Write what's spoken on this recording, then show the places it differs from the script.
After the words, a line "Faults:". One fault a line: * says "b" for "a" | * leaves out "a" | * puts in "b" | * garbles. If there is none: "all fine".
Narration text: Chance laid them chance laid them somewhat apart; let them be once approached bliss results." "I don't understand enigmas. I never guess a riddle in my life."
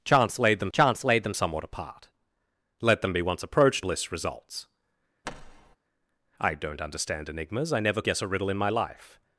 Chance laid them chance laid them somewhat apart; let them be once approached bliss results." "I don't understand enigmas. I never guess a riddle in my life."
Faults:
all fine